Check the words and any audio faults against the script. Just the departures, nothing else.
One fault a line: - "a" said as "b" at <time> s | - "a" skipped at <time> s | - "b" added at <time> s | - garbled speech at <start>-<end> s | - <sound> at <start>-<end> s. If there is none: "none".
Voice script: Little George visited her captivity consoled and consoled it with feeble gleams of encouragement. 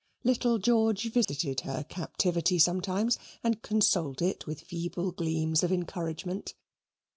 - dropout at 1.2-1.3 s
- "consoled" said as "sometimes" at 2.6 s